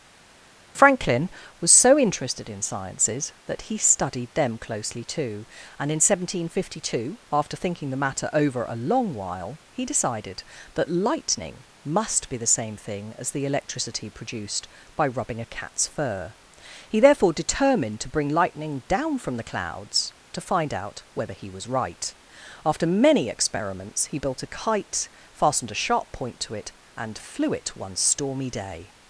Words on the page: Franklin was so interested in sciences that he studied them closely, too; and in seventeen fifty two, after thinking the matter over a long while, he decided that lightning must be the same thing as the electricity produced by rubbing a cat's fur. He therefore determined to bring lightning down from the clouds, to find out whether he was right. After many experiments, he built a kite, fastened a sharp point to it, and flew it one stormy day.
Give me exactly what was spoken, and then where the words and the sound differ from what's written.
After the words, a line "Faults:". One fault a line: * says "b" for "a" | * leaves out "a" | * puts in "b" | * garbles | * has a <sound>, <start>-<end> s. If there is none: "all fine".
Franklin was so interested in sciences that he studied them closely, too; and in seventeen fifty two, after thinking the matter over a long while, he decided that lightning must be the same thing as the electricity produced by rubbing a cat's fur. He therefore determined to bring lightning down from the clouds, to find out whether he was right. After many experiments, he built a kite, fastened a sharp point to it, and flew it one stormy day.
Faults:
all fine